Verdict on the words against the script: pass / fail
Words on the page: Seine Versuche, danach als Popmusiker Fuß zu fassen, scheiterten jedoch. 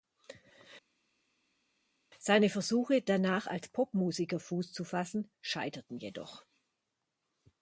pass